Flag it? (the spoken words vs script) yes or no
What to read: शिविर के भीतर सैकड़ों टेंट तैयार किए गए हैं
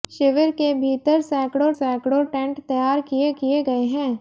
yes